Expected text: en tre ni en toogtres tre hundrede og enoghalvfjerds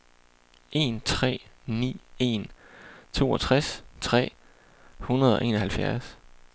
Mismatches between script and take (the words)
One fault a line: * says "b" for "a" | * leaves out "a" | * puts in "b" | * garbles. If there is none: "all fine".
all fine